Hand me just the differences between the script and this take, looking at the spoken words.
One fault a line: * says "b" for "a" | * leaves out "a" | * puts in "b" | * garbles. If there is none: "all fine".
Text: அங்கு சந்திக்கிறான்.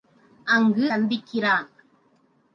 all fine